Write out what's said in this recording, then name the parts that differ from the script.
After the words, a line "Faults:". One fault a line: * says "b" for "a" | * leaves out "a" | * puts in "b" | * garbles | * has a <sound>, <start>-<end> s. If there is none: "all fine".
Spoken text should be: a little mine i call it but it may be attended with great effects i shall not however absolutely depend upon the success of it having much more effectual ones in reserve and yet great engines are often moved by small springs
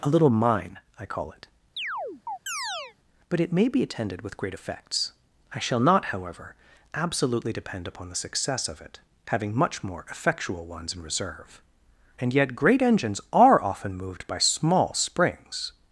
a little mine i call it but it may be attended with great effects i shall not however absolutely depend upon the success of it having much more effectual ones in reserve and yet great engines are often moved by small springs
Faults:
* has a chirp, 1.8-3.0 s